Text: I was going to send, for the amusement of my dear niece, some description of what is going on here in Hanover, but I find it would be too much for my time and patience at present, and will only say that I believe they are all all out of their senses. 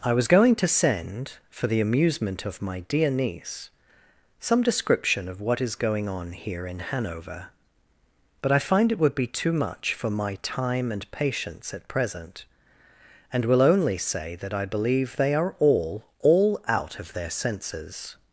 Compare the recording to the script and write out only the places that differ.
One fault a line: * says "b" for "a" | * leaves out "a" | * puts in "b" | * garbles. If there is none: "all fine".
all fine